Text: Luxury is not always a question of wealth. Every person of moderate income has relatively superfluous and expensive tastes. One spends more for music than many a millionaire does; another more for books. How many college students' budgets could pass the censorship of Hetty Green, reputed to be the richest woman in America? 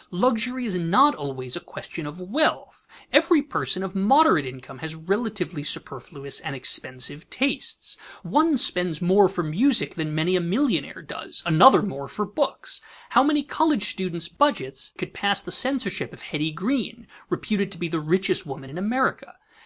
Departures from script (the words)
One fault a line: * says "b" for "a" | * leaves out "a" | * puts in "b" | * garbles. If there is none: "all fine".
all fine